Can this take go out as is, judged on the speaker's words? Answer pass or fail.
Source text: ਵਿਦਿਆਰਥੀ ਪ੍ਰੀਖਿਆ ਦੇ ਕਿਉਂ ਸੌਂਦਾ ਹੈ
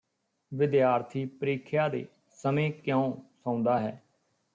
fail